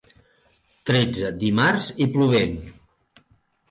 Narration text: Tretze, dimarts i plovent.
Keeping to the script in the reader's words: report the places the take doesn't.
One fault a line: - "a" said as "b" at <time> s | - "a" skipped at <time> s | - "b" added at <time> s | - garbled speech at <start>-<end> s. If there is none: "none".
none